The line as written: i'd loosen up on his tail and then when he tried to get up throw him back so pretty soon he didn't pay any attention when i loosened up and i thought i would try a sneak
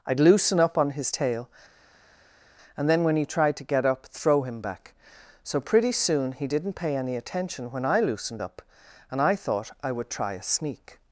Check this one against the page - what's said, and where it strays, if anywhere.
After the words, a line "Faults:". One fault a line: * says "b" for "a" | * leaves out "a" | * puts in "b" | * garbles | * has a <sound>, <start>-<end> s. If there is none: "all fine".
i'd loosen up on his tail and then when he tried to get up throw him back so pretty soon he didn't pay any attention when i loosened up and i thought i would try a sneak
Faults:
all fine